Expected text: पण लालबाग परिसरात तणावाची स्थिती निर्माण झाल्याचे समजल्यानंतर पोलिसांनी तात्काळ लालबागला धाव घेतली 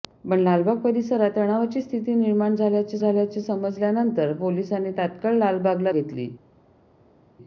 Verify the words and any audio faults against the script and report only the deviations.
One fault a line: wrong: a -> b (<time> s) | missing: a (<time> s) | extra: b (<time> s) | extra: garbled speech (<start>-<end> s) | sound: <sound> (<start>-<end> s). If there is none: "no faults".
extra: झाल्याचे (3.0 s)
missing: धाव (5.9 s)